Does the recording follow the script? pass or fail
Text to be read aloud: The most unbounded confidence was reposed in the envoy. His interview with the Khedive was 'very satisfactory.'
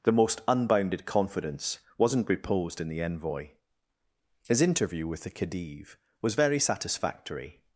fail